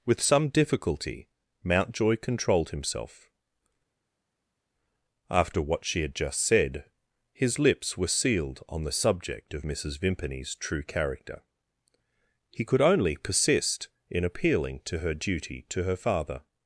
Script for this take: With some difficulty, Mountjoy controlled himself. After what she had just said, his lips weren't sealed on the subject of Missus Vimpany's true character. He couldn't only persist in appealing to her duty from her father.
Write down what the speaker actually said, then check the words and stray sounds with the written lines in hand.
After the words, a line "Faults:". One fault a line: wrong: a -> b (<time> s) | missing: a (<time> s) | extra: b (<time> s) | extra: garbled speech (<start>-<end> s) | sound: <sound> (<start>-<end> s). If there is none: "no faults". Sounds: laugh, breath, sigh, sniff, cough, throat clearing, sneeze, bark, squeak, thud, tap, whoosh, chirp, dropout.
With some difficulty, Mountjoy controlled himself. After what she had just said, his lips were sealed on the subject of Missus Vimpany's true character. He could only persist in appealing to her duty to her father.
Faults:
wrong: weren't -> were (8.0 s)
wrong: couldn't -> could (12.7 s)
wrong: from -> to (15.7 s)